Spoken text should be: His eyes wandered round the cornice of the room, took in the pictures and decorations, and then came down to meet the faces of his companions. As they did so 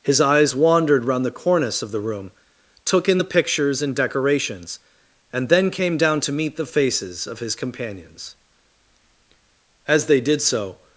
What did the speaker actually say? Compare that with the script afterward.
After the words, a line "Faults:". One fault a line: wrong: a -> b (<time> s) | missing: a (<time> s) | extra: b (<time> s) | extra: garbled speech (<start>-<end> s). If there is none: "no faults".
His eyes wandered round the cornice of the room, took in the pictures and decorations, and then came down to meet the faces of his companions. As they did so
Faults:
no faults